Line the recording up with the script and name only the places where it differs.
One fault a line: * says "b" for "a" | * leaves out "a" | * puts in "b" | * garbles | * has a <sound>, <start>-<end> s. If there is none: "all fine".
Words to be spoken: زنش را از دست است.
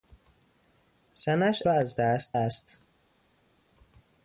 all fine